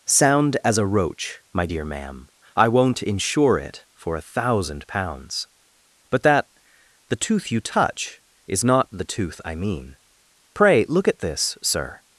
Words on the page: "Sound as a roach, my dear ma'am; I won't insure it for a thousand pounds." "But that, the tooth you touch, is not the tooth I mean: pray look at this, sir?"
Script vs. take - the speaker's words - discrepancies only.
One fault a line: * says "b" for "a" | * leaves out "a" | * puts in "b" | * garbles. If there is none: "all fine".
all fine